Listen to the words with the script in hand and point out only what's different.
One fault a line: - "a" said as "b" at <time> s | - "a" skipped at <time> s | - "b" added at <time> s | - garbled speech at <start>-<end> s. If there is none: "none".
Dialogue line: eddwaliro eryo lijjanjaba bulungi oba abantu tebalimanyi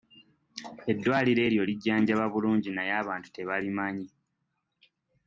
- "oba" said as "naye" at 2.7 s